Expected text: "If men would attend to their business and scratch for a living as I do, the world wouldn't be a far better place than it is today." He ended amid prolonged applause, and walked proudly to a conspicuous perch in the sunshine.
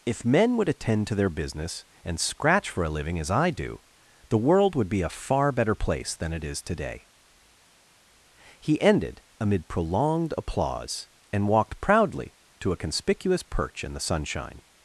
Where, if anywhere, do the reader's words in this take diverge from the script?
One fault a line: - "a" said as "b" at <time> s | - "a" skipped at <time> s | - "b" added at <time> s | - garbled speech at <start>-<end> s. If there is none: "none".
- "wouldn't" said as "would" at 4.8 s